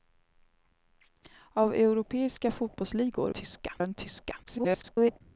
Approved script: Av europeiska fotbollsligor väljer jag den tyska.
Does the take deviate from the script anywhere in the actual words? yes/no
yes